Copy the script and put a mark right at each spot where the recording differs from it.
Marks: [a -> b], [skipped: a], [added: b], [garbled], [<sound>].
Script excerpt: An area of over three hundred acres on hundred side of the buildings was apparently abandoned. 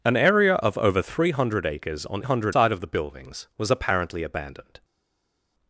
An area of over three hundred acres on hundred side of the buildings was apparently abandoned.